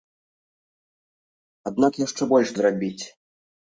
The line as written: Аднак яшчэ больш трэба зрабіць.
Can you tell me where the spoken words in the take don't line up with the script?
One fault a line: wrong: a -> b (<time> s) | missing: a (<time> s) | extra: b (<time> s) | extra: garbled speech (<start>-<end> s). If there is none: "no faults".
missing: трэба (2.5 s)